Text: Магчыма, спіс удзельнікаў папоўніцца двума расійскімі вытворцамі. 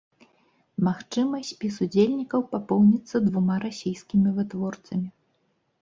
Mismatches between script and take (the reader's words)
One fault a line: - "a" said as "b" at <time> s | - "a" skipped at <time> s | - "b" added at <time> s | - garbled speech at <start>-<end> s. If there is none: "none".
none